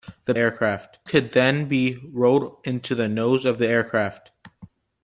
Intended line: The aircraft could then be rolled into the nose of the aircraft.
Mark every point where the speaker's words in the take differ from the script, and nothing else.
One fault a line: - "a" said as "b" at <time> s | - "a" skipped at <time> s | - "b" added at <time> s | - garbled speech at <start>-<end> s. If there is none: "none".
none